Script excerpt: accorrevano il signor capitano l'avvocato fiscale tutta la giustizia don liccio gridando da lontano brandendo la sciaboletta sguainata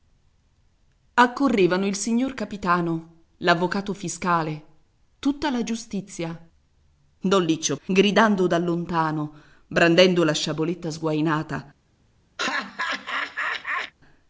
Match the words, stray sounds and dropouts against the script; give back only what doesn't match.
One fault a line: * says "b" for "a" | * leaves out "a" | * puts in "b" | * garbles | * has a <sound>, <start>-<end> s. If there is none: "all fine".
* has a laugh, 12.4-13.9 s